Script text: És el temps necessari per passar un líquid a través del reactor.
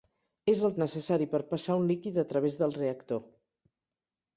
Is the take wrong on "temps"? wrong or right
wrong